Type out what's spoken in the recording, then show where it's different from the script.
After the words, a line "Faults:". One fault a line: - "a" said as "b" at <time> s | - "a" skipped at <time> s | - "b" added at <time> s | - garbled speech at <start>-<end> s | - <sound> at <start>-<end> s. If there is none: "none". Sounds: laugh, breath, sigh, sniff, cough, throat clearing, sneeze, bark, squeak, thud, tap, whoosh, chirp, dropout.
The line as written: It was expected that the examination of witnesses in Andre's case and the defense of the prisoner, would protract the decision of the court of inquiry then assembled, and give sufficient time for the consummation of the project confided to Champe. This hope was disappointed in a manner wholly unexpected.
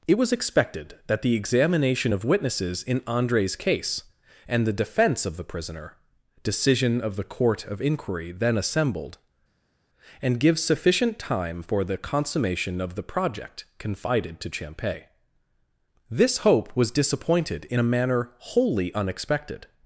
It was expected that the examination of witnesses in Andre's case and the defense of the prisoner, decision of the court of inquiry then assembled, and give sufficient time for the consummation of the project confided to Champe. This hope was disappointed in a manner wholly unexpected.
Faults:
- "would protract the" skipped at 6.0 s